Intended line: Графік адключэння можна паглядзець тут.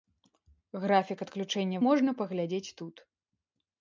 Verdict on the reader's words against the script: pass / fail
pass